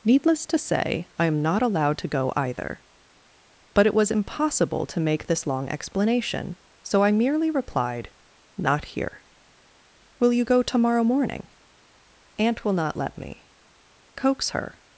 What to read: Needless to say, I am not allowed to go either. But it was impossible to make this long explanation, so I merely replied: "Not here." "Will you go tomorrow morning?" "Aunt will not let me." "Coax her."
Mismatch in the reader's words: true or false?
false